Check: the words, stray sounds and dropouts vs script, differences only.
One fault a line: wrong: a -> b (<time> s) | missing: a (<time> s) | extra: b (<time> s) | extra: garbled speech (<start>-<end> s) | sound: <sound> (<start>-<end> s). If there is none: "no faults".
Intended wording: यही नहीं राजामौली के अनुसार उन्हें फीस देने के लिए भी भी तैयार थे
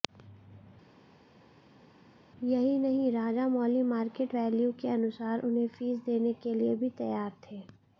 extra: मार्केट वैल्यू (3.9 s)
missing: भी (6.9 s)